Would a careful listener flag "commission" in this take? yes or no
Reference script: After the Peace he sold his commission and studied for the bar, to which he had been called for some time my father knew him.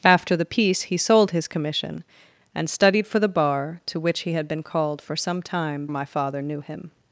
no